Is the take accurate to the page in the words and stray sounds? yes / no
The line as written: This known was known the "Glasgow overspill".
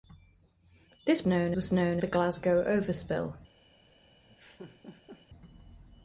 no